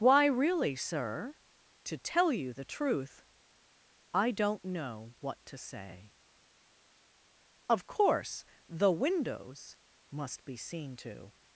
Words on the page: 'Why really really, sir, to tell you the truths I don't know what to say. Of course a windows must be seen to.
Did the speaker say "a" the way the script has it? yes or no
no